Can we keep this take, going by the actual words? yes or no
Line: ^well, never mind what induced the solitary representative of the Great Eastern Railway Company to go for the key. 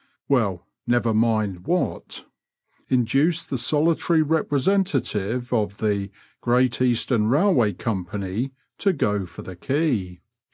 yes